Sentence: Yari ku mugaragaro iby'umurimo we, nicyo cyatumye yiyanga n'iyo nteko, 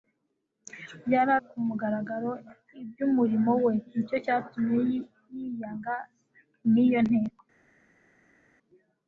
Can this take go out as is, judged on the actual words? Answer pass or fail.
pass